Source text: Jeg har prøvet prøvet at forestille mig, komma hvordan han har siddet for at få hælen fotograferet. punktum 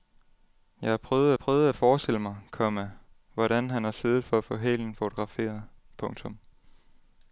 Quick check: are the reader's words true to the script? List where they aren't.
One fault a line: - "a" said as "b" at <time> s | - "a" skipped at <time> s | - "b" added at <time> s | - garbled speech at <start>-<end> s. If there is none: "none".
none